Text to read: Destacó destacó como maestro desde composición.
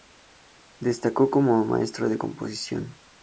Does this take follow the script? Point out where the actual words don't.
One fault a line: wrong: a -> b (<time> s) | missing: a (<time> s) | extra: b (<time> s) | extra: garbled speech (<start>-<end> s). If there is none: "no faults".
missing: destacó (1.3 s)
wrong: desde -> de (2.1 s)